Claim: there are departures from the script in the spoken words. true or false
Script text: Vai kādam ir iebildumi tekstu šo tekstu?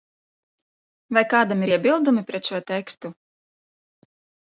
true